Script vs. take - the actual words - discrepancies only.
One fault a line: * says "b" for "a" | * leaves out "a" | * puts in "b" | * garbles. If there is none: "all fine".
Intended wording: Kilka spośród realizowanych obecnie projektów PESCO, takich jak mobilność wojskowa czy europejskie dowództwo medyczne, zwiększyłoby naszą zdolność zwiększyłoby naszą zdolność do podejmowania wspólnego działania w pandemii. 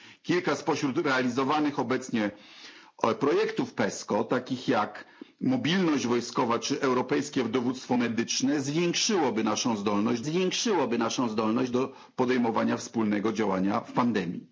all fine